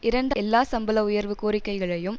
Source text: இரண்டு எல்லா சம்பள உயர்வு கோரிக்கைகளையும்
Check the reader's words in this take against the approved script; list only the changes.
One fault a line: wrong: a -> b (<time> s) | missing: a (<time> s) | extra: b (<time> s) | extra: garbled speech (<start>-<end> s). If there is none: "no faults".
no faults